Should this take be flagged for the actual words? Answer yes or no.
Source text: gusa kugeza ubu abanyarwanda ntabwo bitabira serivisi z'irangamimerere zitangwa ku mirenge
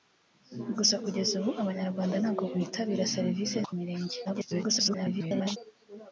yes